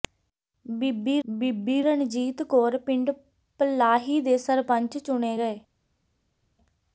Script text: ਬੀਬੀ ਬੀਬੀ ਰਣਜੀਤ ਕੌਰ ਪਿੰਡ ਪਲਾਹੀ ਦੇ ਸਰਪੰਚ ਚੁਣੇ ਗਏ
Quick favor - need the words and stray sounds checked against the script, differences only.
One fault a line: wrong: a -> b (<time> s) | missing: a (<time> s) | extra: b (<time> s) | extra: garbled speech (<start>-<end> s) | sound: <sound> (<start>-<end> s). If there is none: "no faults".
no faults